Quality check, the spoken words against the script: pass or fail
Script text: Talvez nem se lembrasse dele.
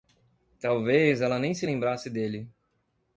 fail